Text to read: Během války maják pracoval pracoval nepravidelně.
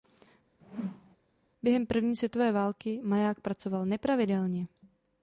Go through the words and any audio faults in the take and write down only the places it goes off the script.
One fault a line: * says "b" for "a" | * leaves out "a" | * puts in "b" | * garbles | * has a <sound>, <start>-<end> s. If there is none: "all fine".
* has a whoosh, 0.6-1.2 s
* puts in "první světové"
* leaves out "pracoval"